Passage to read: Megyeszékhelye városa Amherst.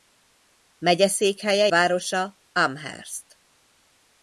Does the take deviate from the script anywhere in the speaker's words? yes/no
no